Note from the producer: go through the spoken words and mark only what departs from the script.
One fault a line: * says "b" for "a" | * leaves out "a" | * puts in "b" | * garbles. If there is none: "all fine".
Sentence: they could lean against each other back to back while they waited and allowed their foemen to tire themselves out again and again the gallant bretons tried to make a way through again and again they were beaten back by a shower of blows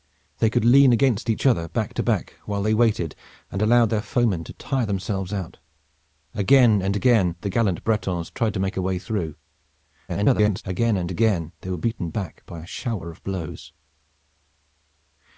* garbles